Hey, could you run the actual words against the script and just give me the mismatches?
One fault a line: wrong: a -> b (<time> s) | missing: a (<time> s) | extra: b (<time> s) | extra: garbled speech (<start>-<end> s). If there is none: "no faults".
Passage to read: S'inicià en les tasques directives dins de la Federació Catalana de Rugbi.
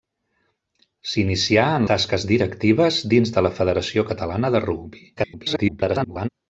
missing: les (1.9 s)
extra: garbled speech (5.2-6.3 s)